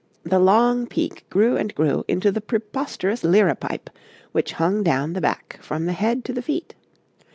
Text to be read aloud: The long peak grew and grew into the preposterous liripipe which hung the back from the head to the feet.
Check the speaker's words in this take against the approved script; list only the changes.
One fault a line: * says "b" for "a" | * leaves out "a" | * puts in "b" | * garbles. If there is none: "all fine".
* puts in "down"